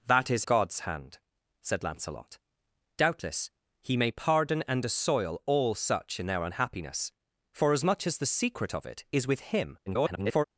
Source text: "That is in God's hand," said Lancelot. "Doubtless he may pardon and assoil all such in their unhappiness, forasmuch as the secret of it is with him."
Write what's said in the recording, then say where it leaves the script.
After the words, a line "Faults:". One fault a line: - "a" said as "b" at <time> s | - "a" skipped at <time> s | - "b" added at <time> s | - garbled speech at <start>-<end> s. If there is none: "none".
"That is God's hand," said Lancelot. "Doubtless he may pardon and assoil all such in their unhappiness, forasmuch as the secret of it is with him." [garbled]
Faults:
- "in" skipped at 0.5 s
- garbled speech at 9.9-10.4 s